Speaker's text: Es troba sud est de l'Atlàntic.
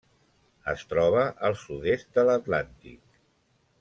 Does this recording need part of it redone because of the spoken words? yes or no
yes